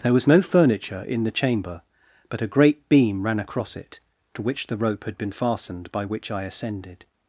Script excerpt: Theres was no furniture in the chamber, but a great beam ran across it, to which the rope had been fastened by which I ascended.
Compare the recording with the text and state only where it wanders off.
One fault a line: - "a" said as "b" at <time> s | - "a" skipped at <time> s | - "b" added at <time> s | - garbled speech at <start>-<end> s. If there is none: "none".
- "Theres" said as "There" at 0.0 s